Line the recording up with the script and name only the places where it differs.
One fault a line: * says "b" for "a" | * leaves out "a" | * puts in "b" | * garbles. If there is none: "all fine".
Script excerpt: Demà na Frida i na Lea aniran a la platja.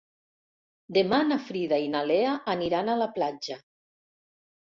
all fine